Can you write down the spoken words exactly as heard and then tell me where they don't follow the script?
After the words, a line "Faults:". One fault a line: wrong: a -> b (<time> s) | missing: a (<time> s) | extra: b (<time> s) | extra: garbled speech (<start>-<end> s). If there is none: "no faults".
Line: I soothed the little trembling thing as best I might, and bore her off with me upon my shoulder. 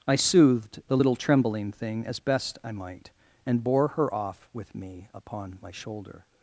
I soothed the little trembling thing as best I might, and bore her off with me upon my shoulder.
Faults:
no faults